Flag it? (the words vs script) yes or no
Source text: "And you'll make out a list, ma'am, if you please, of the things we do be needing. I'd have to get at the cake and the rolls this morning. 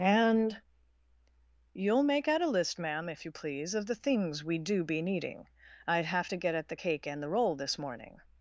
yes